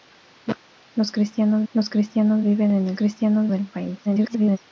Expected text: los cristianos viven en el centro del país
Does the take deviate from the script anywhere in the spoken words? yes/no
yes